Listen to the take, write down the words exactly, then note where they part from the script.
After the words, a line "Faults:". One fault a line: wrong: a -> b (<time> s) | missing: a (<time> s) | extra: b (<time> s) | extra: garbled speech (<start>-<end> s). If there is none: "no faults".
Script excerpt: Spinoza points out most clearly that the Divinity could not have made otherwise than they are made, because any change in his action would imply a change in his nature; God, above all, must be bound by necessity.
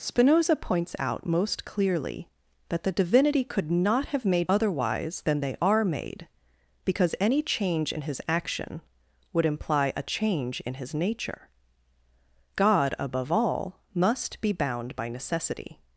Spinoza points out most clearly that the Divinity could not have made otherwise than they are made, because any change in his action would imply a change in his nature; God, above all, must be bound by necessity.
Faults:
no faults